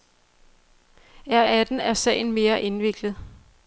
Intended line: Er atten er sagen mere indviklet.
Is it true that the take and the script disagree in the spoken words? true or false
false